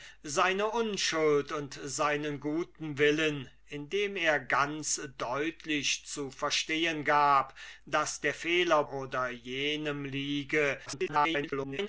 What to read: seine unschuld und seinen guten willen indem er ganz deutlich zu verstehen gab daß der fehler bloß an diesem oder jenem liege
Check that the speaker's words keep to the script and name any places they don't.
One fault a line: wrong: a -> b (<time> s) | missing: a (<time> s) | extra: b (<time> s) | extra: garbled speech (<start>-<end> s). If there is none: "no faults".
missing: bloß an diesem (8.8 s)
extra: garbled speech (10.9-11.9 s)